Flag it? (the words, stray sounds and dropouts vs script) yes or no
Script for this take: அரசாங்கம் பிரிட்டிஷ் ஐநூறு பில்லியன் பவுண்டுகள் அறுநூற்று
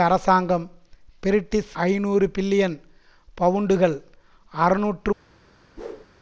yes